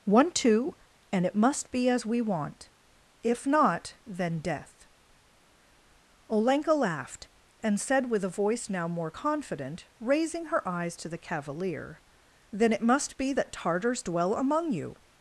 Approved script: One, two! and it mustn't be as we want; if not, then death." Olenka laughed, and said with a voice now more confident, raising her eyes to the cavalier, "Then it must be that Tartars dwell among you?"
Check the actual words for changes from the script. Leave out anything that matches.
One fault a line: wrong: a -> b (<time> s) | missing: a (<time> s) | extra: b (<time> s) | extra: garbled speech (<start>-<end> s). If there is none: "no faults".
wrong: mustn't -> must (1.4 s)